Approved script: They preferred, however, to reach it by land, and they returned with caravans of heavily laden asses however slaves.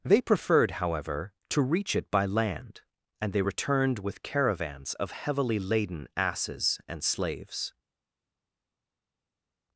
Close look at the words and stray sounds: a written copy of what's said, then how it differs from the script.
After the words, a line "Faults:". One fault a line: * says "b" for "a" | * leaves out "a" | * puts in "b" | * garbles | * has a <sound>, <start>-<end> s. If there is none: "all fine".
They preferred, however, to reach it by land, and they returned with caravans of heavily laden asses and slaves.
Faults:
* says "and" for "however"